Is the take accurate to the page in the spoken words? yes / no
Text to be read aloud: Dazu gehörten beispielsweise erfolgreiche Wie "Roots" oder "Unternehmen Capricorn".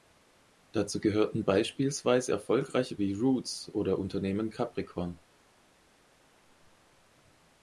yes